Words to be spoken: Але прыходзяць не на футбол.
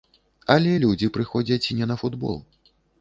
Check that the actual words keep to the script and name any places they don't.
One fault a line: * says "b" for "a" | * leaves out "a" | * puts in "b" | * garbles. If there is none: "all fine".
* puts in "людзі"